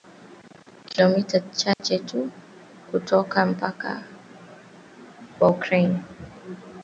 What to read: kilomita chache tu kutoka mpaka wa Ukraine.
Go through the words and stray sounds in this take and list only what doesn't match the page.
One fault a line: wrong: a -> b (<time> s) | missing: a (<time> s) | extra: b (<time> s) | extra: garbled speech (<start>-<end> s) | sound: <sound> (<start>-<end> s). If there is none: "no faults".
sound: dropout (1.7-1.8 s)